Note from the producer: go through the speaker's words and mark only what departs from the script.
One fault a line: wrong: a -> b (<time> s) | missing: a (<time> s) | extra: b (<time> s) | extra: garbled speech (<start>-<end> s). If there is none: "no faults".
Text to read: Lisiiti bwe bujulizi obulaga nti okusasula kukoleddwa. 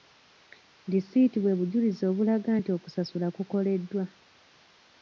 no faults